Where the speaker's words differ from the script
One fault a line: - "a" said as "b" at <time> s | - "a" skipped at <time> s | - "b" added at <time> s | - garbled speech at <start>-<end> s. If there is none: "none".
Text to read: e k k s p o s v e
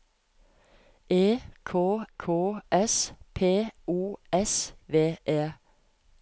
none